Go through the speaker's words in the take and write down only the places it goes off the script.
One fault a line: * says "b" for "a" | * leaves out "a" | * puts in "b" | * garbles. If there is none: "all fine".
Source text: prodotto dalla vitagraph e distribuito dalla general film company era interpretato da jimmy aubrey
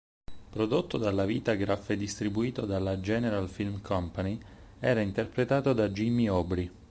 all fine